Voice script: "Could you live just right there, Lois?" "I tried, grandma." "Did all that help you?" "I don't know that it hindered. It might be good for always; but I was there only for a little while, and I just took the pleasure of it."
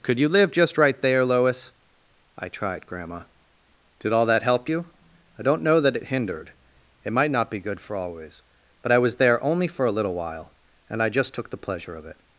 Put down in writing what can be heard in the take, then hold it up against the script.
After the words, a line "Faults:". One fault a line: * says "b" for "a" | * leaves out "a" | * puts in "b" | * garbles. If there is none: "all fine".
"Could you live just right there, Lois?" "I tried, grandma." "Did all that help you?" "I don't know that it hindered. It might not be good for always; but I was there only for a little while, and I just took the pleasure of it."
Faults:
* puts in "not"